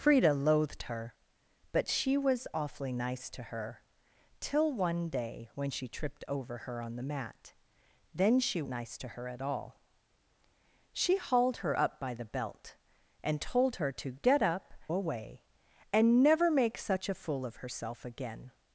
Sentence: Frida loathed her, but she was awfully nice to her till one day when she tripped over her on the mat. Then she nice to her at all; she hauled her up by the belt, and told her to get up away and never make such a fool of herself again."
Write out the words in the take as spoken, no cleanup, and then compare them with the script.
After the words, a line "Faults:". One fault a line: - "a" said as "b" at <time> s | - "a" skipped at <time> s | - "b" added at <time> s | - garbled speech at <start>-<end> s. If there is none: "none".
Frida loathed her, but she was awfully nice to her till one day when she tripped over her on the mat. Then she nice to her at all; she hauled her up by the belt, and told her to get up away and never make such a fool of herself again."
Faults:
none